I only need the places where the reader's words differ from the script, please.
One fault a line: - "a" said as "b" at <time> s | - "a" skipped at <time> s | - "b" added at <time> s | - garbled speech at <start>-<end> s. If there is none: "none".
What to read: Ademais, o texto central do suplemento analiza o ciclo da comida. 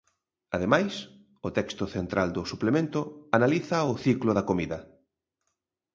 none